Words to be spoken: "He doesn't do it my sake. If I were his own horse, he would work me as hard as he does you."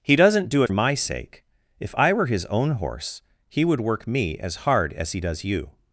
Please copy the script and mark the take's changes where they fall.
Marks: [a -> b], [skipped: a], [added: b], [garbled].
"He doesn't do it my sake. If I were his own horse, he would work me as hard as he does you."